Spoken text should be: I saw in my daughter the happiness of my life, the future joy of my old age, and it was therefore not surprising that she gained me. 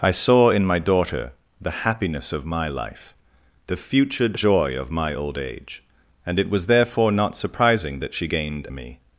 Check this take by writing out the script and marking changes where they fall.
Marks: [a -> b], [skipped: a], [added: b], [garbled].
I saw in my daughter the happiness of my life, the future joy of my old age, and it was therefore not surprising that she gained me.